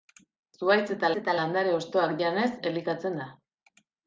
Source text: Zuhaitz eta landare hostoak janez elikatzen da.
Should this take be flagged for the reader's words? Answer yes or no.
yes